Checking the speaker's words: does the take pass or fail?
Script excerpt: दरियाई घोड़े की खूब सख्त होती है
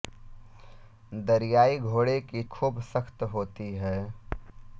pass